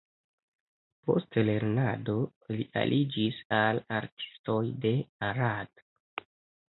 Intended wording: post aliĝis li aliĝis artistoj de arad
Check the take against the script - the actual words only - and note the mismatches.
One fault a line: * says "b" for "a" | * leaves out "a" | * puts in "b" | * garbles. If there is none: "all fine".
* says "lernado" for "aliĝis"
* puts in "al"